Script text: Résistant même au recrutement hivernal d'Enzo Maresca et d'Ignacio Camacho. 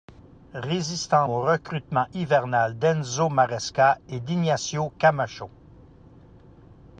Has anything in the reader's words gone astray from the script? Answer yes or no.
yes